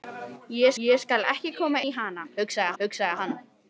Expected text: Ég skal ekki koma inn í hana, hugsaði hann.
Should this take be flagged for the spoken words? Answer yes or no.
yes